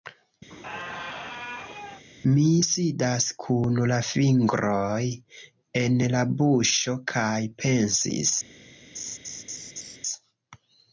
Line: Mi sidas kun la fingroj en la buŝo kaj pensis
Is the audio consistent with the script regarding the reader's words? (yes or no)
yes